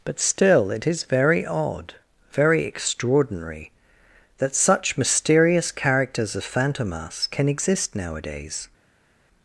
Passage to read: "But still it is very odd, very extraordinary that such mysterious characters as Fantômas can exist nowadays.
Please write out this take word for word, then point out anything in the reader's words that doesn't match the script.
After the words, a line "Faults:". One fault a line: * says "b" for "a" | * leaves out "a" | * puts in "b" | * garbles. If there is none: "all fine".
"But still it is very odd, very extraordinary that such mysterious characters as Fantômas can exist nowadays.
Faults:
all fine